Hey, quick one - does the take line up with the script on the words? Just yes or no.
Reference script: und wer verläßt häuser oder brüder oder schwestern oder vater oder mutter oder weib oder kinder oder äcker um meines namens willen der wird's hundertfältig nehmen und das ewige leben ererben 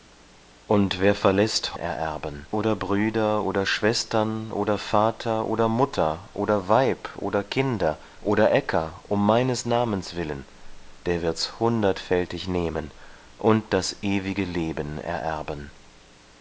no